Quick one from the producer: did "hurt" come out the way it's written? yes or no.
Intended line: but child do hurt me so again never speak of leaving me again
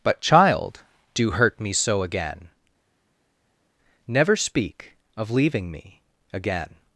yes